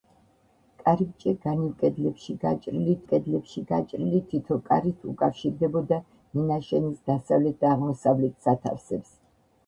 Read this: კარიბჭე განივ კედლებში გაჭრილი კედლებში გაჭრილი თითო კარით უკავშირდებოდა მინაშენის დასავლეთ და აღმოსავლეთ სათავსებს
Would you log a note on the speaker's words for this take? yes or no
no